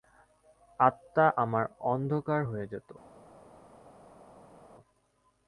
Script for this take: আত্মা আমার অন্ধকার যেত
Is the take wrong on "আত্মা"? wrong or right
right